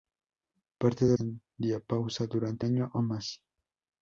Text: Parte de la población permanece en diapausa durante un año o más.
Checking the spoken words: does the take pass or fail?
fail